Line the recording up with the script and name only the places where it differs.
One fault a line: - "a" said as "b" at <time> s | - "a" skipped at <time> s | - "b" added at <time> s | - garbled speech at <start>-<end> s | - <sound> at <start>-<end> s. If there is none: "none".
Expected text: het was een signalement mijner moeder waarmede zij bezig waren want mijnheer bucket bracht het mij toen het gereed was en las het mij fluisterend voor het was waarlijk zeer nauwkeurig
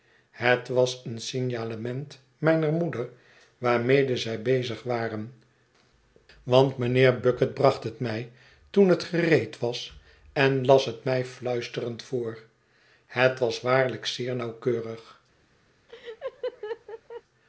- laugh at 15.9-17.2 s